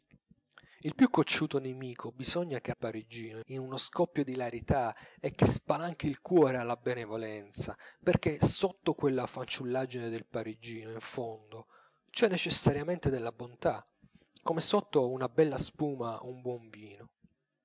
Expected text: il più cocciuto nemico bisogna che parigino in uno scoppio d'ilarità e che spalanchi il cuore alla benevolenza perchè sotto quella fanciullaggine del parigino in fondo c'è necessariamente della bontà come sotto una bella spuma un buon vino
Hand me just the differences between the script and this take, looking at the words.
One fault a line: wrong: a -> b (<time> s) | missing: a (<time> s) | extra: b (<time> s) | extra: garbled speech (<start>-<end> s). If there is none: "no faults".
no faults